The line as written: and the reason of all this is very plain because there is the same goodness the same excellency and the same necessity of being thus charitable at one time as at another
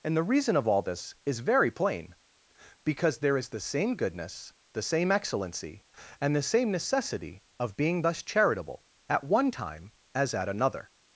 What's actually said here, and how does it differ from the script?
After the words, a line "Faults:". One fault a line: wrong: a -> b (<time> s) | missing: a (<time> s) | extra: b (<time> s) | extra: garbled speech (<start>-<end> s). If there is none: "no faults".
and the reason of all this is very plain because there is the same goodness the same excellency and the same necessity of being thus charitable at one time as at another
Faults:
no faults